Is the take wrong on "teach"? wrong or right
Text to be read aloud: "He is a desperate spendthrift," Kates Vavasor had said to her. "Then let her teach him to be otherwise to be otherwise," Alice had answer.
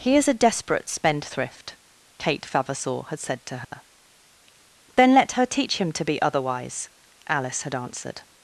right